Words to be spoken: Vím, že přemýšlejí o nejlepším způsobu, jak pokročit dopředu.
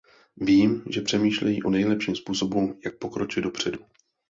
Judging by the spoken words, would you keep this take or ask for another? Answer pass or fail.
pass